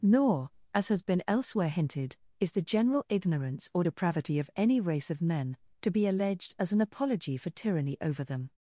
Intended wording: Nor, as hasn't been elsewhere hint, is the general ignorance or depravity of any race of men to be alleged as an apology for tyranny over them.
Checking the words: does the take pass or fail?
fail